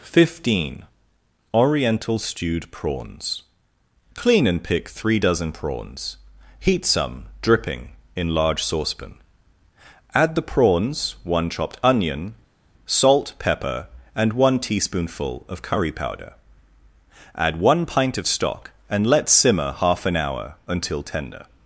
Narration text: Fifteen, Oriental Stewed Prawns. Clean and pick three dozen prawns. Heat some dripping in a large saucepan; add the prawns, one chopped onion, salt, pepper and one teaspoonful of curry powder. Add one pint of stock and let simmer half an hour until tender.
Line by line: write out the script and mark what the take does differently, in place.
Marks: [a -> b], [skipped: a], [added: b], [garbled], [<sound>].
Fifteen, Oriental Stewed Prawns. Clean and pick three dozen prawns. Heat some dripping in [skipped: a] large saucepan; add the prawns, one chopped onion, salt, pepper and one teaspoonful of curry powder. Add one pint of stock and let simmer half an hour until tender.